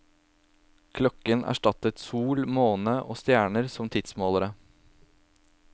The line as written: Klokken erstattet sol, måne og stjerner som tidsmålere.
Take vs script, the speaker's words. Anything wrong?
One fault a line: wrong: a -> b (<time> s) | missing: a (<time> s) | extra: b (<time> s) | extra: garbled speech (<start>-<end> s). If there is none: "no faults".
no faults